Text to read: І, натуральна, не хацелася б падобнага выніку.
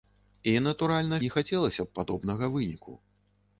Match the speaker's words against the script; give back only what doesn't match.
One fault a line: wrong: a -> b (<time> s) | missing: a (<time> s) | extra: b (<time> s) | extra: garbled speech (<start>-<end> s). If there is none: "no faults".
no faults